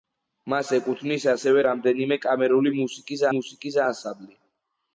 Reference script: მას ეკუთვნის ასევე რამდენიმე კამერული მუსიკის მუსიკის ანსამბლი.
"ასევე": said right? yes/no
yes